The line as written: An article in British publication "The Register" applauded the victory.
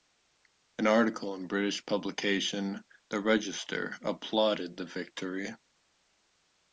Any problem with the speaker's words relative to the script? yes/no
no